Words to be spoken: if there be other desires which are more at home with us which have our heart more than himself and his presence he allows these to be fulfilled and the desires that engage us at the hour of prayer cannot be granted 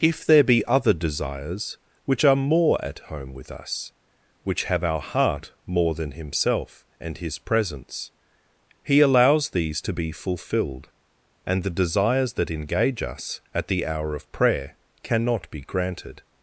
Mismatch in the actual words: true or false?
false